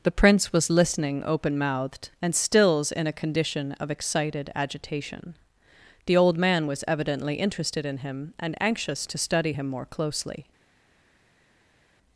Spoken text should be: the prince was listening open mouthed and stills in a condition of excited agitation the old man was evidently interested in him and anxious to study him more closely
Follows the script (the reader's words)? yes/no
yes